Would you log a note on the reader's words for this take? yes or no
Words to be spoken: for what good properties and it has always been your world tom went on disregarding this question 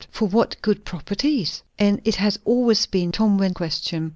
yes